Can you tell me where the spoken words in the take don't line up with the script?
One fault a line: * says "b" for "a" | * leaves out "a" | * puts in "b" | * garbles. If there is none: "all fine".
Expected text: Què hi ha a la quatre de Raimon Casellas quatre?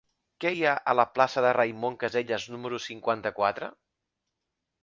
* says "plaça" for "quatre"
* puts in "número cinquanta"